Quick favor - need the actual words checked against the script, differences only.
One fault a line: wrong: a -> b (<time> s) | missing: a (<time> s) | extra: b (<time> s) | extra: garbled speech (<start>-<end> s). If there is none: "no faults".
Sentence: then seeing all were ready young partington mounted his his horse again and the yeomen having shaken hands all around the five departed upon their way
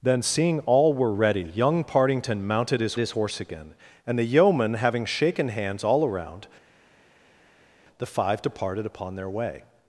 no faults